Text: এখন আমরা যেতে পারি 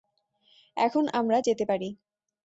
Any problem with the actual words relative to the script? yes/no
no